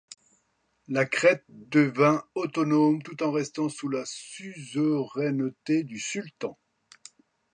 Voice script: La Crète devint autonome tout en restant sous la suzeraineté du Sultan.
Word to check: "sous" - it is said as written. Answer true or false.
true